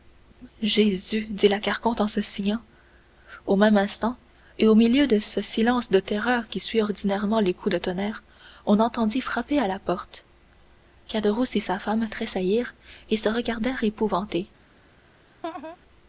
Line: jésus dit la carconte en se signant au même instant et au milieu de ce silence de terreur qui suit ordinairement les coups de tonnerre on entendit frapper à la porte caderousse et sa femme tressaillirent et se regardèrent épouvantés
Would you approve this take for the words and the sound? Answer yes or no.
no